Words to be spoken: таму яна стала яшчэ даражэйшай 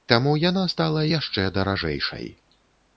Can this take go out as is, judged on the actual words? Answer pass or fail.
pass